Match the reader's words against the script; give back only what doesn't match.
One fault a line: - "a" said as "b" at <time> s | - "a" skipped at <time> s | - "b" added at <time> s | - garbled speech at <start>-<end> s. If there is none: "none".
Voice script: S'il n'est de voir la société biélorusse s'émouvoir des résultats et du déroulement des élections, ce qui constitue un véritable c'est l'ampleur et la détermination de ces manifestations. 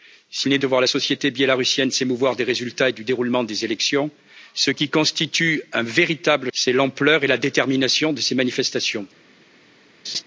none